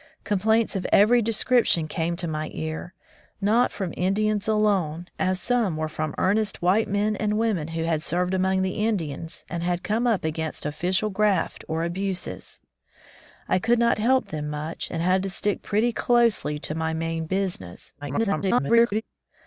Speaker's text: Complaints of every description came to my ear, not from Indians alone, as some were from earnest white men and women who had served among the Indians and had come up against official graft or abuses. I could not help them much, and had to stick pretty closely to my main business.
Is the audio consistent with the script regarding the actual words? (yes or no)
no